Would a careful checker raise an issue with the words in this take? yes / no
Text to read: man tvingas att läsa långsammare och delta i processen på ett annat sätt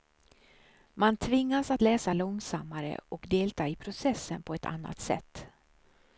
no